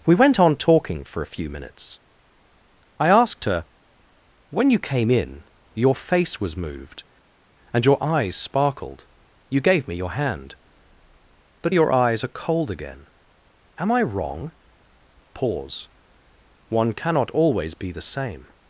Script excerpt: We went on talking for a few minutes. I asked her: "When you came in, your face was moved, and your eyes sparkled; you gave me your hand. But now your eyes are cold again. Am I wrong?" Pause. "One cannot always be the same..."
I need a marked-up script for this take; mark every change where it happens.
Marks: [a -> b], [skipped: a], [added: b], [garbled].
We went on talking for a few minutes. I asked her: "When you came in, your face was moved, and your eyes sparkled; you gave me your hand. But [skipped: now] your eyes are cold again. Am I wrong?" Pause. "One cannot always be the same..."